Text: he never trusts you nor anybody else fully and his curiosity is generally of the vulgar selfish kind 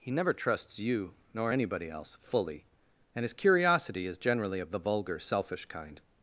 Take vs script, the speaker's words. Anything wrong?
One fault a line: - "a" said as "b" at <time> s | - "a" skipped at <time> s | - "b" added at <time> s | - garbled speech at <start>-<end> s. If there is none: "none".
none